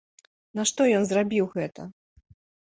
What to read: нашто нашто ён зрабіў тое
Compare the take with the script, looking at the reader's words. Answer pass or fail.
fail